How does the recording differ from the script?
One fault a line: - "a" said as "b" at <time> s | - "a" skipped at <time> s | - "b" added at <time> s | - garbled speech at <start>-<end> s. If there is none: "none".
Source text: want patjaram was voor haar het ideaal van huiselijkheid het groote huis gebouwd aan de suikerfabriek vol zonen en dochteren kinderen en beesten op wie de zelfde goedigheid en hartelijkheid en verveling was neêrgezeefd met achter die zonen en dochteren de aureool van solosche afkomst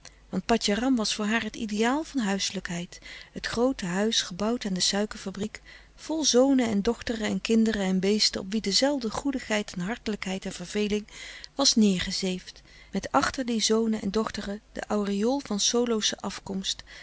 - "en" added at 7.3 s